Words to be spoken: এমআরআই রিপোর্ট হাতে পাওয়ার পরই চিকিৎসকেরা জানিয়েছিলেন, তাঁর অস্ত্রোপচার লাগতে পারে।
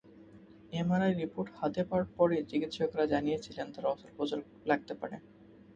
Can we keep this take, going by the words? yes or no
yes